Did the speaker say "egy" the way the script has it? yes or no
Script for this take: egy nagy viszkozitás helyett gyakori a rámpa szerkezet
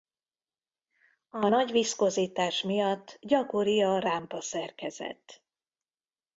no